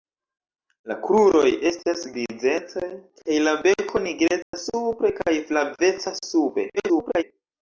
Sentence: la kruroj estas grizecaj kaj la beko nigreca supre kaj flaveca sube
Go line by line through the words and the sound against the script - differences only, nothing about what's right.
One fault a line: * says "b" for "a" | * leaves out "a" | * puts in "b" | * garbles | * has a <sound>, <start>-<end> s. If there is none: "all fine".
* has a dropout, 4.4-4.5 s
* garbles